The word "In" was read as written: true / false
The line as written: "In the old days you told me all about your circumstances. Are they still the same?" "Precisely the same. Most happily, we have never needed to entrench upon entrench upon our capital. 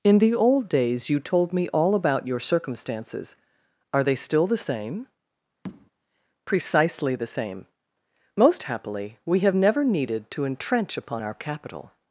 true